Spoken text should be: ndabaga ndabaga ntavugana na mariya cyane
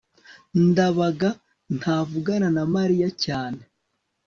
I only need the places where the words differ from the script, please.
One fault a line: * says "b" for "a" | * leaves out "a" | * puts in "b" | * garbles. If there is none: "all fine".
* leaves out "ndabaga"